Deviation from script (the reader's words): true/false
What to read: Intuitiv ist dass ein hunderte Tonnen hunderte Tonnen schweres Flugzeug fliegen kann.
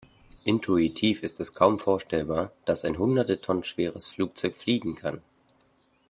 true